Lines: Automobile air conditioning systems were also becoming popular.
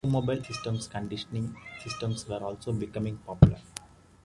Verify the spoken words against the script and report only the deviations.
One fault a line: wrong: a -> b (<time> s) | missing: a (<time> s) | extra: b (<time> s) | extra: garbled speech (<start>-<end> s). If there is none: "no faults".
wrong: air -> systems (0.5 s)